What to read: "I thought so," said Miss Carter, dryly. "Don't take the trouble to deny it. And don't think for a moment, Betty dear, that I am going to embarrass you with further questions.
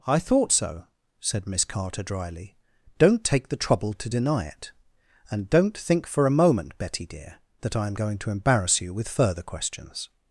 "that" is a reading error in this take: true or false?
false